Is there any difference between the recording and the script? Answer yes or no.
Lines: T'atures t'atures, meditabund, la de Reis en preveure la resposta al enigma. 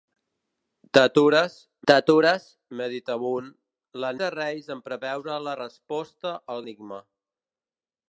no